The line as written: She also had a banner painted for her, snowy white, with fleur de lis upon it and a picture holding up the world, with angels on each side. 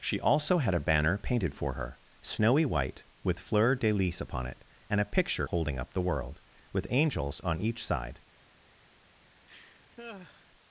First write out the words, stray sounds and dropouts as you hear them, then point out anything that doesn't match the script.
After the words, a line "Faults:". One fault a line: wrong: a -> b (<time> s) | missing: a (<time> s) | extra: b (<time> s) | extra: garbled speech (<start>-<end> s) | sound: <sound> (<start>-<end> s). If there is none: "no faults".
She also had a banner painted for her, snowy white, with fleur de lis upon it and a picture holding up the world, with angels on each side.
Faults:
sound: laugh (9.5-10.5 s)